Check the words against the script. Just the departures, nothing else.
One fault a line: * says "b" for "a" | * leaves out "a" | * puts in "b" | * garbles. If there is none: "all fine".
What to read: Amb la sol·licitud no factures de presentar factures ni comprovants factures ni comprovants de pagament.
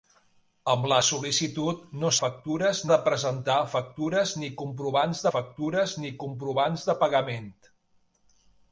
all fine